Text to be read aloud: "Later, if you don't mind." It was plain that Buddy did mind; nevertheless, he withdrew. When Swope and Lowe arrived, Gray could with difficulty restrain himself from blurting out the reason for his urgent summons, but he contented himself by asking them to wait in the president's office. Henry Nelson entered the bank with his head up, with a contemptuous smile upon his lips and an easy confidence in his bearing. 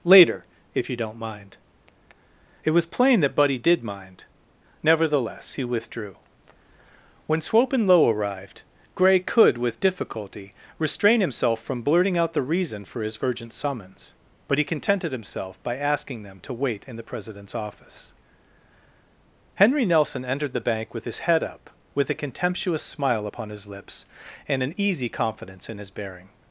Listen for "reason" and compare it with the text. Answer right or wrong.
right